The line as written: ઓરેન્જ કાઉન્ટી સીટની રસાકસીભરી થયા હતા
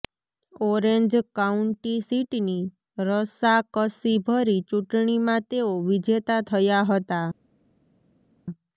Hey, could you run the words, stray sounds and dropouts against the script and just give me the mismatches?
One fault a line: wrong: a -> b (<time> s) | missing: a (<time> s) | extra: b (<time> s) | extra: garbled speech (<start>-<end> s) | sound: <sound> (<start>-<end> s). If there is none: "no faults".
extra: ચૂંટણીમાં તેઓ વિજેતા (4.7 s)